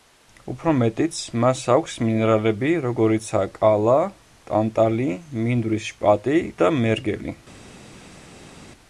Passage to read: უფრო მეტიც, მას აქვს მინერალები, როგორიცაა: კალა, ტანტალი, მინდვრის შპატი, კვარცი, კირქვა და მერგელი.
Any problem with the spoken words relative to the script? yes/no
yes